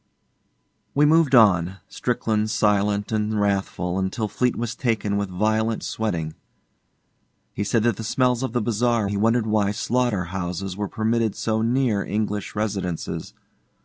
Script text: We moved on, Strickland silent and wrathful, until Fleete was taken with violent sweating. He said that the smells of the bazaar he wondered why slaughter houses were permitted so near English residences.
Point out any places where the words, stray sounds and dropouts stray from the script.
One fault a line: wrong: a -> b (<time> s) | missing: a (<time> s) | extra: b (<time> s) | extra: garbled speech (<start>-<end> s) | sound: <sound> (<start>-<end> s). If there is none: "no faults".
no faults